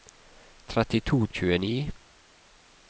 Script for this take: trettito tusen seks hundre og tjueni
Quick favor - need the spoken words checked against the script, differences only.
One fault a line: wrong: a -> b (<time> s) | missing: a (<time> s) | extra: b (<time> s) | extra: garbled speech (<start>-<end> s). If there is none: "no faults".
missing: tusen seks hundre (1.2 s)